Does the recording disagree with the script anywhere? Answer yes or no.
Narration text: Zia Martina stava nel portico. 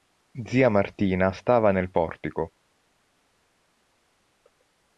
no